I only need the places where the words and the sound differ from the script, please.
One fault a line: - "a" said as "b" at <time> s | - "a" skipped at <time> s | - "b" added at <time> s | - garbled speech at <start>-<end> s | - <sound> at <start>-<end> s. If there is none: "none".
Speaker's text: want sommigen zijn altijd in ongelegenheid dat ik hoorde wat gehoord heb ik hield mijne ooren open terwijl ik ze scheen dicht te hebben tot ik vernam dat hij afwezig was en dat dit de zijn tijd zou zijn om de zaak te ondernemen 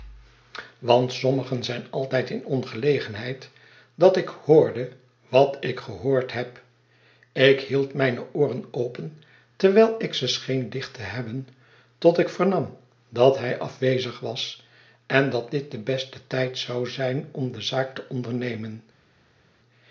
- "ik" added at 5.6 s
- "zijn" said as "beste" at 15.8 s